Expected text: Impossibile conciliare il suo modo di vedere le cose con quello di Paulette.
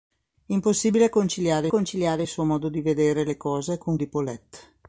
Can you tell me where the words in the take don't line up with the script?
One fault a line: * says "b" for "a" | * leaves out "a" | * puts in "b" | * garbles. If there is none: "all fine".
* puts in "conciliare"
* leaves out "quello"